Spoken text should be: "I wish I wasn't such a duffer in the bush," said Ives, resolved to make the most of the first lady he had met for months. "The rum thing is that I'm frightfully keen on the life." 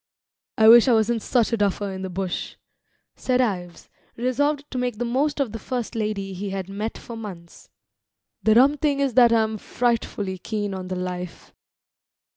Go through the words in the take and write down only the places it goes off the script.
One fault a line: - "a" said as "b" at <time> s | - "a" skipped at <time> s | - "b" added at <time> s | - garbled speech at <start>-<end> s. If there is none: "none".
none